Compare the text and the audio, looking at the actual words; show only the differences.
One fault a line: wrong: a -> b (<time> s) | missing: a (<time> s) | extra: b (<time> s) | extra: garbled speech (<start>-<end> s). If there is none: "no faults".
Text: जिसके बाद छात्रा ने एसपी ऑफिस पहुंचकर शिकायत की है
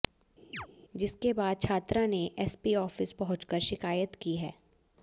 no faults